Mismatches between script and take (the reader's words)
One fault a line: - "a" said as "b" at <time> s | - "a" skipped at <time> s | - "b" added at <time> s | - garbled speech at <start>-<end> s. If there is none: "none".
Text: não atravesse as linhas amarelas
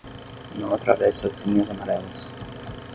none